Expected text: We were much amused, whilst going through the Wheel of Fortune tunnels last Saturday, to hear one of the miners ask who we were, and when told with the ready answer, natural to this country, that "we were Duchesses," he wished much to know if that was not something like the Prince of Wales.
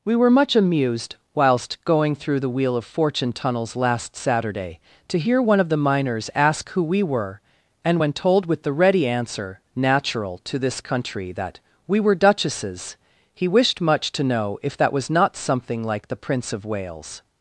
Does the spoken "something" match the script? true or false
true